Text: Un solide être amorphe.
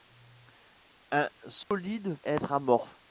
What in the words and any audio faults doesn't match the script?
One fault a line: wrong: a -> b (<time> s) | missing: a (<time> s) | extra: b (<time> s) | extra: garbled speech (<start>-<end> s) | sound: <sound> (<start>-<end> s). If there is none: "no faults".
sound: dropout (1.6-1.7 s)